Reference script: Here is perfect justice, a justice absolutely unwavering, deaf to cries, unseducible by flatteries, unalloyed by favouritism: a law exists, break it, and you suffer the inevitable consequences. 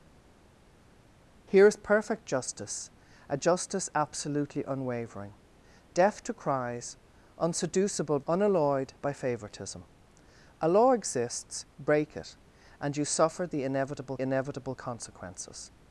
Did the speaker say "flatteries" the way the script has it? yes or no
no